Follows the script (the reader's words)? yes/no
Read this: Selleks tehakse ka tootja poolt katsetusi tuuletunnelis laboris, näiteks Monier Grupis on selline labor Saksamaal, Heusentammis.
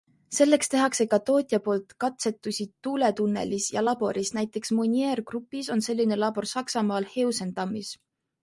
no